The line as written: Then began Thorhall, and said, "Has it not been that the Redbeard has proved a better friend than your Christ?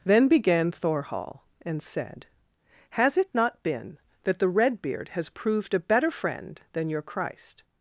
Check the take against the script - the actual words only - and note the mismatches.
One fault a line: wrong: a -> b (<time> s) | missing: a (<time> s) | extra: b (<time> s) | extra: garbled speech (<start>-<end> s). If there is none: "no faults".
no faults